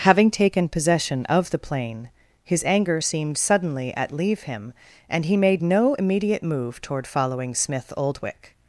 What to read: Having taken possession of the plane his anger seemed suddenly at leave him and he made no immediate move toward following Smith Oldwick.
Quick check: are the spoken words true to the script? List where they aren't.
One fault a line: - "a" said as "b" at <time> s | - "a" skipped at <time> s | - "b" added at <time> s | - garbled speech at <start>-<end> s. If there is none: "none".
none